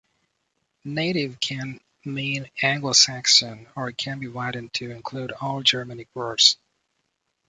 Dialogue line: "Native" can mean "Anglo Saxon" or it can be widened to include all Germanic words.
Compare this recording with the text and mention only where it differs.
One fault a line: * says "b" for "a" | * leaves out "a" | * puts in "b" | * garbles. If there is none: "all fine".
all fine